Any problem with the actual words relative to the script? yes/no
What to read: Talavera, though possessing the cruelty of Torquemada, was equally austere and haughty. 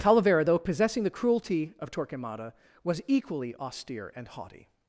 no